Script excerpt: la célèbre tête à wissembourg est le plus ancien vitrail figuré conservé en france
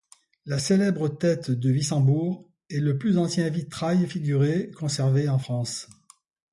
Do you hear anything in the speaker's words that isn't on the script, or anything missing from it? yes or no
yes